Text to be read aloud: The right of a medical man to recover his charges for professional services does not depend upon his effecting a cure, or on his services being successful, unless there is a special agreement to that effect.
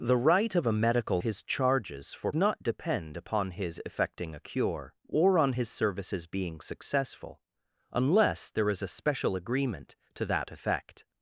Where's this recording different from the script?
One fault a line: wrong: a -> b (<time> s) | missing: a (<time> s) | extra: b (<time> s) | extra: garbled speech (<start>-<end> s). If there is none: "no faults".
missing: man to recover (1.2 s)
missing: professional services does (2.3 s)